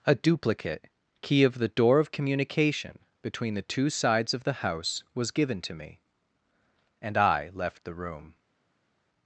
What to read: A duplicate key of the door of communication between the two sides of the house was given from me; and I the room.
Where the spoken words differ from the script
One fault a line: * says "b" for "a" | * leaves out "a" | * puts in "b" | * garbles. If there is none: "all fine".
* says "to" for "from"
* puts in "left"